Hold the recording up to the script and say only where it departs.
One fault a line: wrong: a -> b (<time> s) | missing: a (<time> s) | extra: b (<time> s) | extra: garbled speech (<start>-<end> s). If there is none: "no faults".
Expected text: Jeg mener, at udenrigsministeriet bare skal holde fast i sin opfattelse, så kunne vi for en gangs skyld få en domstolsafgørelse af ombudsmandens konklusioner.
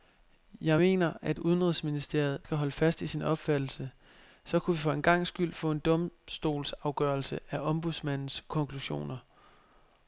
missing: bare (2.4 s)